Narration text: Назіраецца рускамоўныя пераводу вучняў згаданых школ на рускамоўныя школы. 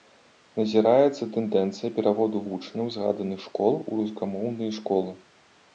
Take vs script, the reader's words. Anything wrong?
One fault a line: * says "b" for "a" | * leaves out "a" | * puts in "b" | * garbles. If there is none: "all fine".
* says "тэндэнцыя" for "рускамоўныя"
* says "у" for "на"